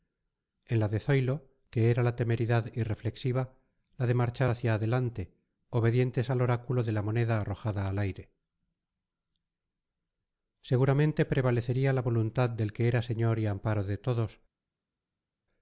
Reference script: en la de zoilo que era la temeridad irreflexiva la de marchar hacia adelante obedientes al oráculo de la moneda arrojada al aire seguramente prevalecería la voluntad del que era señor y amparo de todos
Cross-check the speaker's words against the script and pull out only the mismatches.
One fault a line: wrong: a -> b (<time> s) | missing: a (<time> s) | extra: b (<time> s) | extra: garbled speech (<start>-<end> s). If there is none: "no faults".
no faults